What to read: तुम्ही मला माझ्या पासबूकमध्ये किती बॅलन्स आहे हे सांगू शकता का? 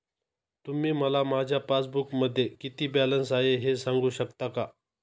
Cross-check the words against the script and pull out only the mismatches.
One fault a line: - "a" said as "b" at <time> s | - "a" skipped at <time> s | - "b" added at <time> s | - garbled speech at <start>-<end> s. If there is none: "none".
none